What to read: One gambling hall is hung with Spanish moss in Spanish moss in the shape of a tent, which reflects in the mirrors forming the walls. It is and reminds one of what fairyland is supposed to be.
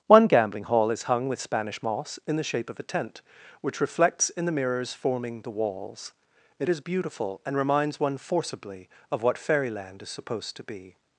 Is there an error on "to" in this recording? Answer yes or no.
no